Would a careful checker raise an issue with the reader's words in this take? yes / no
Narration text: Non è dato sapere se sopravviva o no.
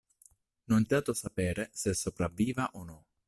no